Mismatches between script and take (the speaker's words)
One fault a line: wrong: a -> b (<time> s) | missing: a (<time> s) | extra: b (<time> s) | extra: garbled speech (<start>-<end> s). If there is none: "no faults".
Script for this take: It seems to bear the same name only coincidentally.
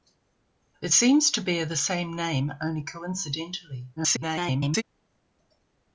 extra: garbled speech (4.0-4.8 s)